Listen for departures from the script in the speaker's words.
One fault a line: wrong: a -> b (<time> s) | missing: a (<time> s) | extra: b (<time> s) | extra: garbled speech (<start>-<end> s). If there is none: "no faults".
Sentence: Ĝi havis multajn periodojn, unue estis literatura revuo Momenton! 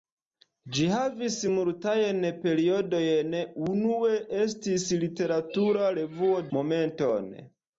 no faults